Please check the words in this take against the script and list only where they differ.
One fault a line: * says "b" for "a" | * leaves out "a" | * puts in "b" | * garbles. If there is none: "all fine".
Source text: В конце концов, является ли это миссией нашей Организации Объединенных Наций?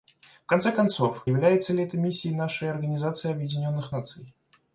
all fine